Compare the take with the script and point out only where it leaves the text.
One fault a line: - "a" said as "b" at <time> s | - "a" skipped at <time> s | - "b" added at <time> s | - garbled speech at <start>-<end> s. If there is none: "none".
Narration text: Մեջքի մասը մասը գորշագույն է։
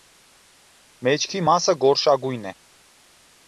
- "մասը" skipped at 1.8 s